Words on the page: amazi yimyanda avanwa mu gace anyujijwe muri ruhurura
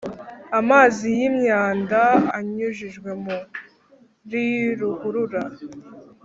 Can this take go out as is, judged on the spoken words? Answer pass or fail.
fail